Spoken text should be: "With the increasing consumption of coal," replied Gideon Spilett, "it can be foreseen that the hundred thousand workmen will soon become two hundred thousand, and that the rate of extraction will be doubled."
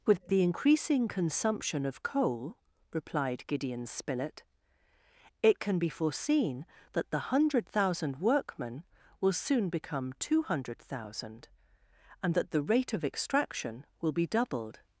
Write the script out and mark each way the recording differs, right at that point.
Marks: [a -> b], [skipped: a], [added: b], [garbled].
"With the increasing consumption of coal," replied Gideon Spilett, "it can be foreseen that the hundred thousand workmen will soon become two hundred thousand, and that the rate of extraction will be doubled."